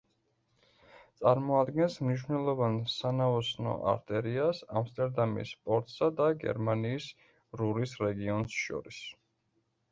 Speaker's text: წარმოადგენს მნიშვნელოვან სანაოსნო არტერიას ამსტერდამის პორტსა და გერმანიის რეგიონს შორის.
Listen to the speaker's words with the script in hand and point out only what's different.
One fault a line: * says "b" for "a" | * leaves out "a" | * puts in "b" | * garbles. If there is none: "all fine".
* puts in "რურის"